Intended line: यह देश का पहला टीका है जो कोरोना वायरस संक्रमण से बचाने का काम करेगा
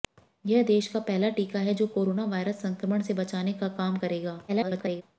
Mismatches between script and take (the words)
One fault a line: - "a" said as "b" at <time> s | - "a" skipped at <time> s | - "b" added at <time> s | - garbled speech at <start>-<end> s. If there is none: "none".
- garbled speech at 4.5-5.0 s